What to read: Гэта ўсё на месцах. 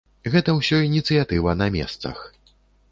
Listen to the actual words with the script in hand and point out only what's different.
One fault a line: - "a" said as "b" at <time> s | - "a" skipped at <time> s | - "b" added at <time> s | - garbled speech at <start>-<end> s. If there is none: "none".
- "ініцыятыва" added at 0.9 s